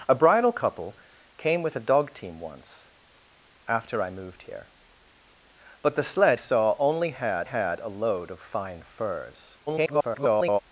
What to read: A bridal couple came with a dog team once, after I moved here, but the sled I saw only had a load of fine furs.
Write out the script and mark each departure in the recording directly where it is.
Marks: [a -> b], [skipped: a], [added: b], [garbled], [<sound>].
A bridal couple came with a dog team once, after I moved here, but the sled [skipped: I] saw only had [added: had] a load of fine furs. [garbled]